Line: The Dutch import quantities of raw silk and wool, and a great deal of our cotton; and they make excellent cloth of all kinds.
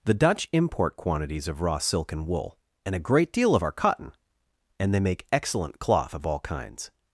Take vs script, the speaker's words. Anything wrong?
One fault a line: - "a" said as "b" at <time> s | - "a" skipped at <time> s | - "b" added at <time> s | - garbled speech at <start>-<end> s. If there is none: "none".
none